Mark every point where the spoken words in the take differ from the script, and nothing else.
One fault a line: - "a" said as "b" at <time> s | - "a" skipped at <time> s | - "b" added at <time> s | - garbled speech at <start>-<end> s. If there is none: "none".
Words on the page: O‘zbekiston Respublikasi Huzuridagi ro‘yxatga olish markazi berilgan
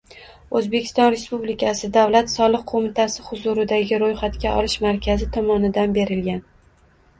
- "Davlat soliq qo‘mitasi" added at 2.0 s
- "tomonidan" added at 5.4 s